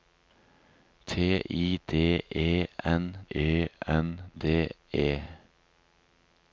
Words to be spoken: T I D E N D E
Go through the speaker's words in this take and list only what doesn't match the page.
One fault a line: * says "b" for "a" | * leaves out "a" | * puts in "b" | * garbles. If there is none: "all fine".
* puts in "E N"